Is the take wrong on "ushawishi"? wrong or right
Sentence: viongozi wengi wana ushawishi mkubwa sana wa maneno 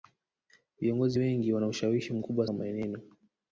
right